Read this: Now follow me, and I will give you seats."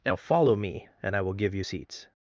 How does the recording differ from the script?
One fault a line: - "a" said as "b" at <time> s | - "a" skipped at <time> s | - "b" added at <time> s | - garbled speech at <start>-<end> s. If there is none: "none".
none